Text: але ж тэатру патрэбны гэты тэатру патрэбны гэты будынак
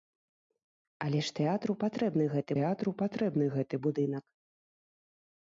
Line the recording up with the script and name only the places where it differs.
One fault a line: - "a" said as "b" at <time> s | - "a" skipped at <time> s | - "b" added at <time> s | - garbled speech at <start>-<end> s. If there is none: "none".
none